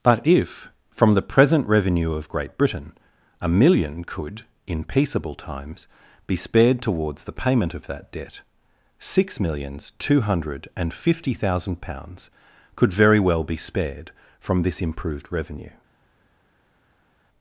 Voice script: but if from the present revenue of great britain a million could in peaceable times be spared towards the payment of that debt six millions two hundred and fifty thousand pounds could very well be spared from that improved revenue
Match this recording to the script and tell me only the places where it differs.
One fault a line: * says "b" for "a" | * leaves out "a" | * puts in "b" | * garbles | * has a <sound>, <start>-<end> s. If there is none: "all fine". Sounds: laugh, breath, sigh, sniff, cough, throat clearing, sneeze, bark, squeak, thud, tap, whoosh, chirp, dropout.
* says "this" for "that"